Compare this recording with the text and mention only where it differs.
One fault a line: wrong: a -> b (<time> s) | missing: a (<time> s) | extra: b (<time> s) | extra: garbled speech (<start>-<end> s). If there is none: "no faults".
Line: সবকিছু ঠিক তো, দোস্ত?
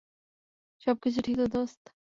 no faults